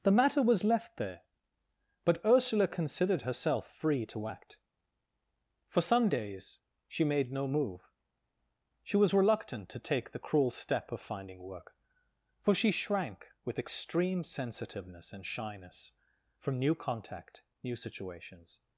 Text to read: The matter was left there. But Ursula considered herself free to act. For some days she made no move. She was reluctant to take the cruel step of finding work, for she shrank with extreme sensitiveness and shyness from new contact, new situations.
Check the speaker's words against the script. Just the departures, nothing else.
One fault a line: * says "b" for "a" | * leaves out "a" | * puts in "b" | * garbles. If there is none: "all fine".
all fine